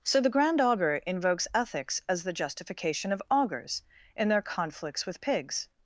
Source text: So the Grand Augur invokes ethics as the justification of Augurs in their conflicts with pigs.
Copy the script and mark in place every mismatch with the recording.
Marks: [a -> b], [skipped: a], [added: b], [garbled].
So the Grand Augur invokes ethics as the justification of Augurs in their conflicts with pigs.